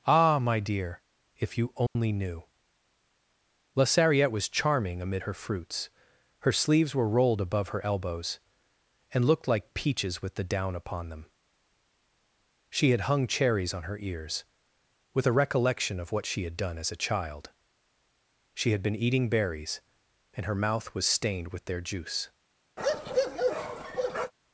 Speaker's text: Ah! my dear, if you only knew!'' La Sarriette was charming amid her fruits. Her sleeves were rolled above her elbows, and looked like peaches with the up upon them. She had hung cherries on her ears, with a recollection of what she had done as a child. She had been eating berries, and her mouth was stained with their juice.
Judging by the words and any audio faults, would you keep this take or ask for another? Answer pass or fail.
fail